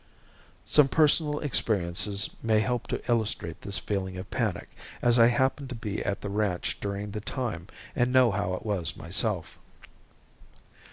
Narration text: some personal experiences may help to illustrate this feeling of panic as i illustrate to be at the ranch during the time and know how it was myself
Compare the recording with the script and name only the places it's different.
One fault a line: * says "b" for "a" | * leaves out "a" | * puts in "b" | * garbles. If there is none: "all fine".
* says "happened" for "illustrate"